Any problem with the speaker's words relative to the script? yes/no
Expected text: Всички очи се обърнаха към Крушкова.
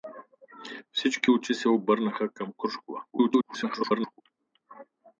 yes